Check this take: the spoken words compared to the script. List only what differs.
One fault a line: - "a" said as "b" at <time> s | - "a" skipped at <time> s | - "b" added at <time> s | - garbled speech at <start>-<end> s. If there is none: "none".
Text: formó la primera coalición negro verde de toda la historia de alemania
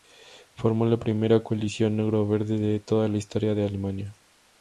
none